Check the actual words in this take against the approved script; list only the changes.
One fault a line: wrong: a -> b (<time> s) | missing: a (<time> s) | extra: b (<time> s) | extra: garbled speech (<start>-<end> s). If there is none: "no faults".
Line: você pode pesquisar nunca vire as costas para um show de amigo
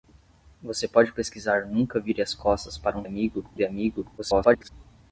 wrong: show -> amigo (3.0 s)
extra: garbled speech (4.2-4.7 s)